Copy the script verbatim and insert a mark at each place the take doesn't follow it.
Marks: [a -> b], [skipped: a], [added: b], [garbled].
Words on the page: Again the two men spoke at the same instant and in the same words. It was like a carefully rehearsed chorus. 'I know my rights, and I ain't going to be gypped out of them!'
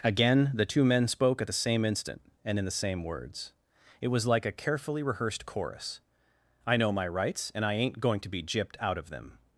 Again the two men spoke at the same instant and in the same words. It was like a carefully rehearsed chorus. 'I know my rights, and I ain't going to be gypped out of them!'